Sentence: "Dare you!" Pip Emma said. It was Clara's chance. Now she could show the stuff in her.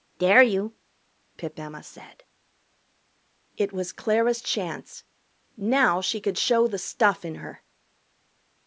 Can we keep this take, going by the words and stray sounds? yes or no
yes